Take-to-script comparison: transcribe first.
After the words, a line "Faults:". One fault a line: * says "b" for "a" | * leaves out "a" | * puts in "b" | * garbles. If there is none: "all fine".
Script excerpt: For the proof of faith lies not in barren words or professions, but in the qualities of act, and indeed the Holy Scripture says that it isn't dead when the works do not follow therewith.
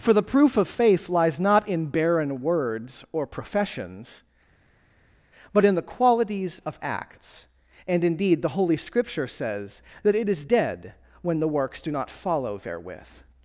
For the proof of faith lies not in barren words or professions, but in the qualities of acts, and indeed the Holy Scripture says that it is dead when the works do not follow therewith.
Faults:
* says "acts" for "act"
* says "is" for "isn't"